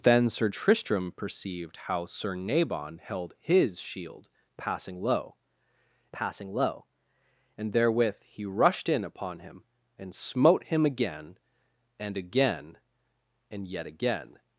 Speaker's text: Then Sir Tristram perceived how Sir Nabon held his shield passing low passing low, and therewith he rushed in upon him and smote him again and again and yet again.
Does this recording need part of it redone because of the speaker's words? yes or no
no